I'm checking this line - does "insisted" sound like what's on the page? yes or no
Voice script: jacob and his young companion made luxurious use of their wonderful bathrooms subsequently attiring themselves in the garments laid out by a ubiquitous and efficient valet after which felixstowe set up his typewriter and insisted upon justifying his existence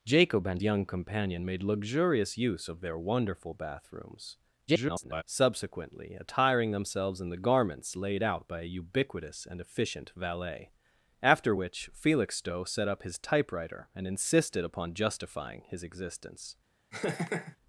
yes